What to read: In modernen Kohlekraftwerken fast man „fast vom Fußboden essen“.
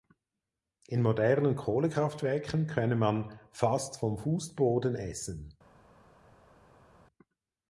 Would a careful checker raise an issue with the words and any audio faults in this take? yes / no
yes